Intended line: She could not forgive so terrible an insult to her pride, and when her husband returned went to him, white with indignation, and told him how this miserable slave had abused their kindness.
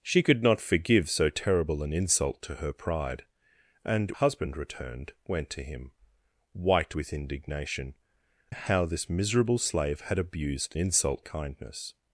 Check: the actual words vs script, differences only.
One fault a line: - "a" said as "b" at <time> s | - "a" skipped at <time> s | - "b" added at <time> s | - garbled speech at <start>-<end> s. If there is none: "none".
- "when her" skipped at 4.1 s
- "and told him" skipped at 7.9 s
- "their" said as "insult" at 10.8 s